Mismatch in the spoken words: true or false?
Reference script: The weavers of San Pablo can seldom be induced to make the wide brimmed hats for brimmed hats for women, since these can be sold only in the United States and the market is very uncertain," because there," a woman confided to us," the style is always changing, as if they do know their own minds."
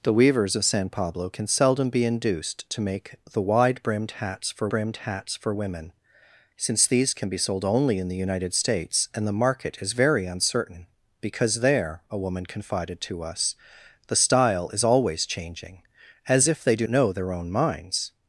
false